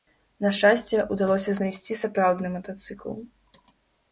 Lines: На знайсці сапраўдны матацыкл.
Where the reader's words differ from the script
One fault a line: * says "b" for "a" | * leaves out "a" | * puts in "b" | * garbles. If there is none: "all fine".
* puts in "шчасце удалося"